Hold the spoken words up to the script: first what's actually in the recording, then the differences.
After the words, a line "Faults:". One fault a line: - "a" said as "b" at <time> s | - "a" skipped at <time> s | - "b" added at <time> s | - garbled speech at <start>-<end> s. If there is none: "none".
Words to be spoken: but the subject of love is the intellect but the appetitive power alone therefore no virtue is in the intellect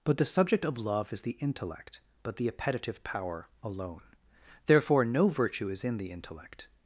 but the subject of love is the intellect but the appetitive power alone therefore no virtue is in the intellect
Faults:
none